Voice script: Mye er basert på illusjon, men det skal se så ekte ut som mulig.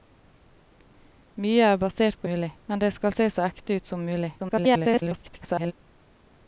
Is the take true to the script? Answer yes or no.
no